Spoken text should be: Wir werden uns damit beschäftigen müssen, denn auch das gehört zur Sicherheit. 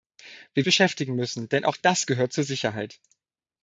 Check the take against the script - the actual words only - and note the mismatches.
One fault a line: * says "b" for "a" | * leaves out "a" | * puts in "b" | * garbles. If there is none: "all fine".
* leaves out "werden uns damit"